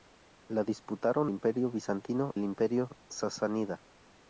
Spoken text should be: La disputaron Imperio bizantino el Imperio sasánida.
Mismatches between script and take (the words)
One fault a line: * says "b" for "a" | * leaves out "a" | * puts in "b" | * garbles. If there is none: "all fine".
all fine